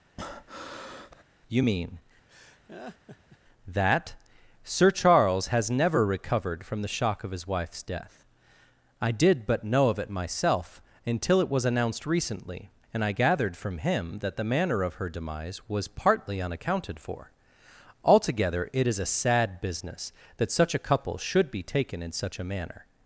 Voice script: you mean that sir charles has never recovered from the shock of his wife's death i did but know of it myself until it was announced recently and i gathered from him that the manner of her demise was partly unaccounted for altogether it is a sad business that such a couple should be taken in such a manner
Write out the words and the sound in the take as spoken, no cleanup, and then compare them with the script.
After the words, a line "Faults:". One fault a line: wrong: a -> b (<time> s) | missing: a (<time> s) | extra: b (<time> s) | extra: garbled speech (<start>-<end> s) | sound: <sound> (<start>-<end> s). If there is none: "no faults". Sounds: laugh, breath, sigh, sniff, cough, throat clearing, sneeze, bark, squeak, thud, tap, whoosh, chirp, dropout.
you mean that sir charles has never recovered from the shock of his wife's death i did but know of it myself until it was announced recently and i gathered from him that the manner of her demise was partly unaccounted for altogether it is a sad business that such a couple should be taken in such a manner
Faults:
sound: breath (0.2-1.2 s)
sound: laugh (2.3-3.4 s)